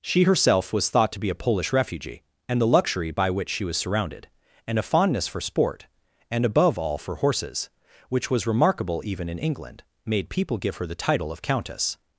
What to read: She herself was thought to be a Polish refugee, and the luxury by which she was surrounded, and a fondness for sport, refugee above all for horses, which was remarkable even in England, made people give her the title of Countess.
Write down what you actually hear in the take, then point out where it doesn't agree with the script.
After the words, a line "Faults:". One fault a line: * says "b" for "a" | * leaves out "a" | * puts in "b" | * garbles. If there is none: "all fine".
She herself was thought to be a Polish refugee, and the luxury by which she was surrounded, and a fondness for sport, and above all for horses, which was remarkable even in England, made people give her the title of Countess.
Faults:
* says "and" for "refugee"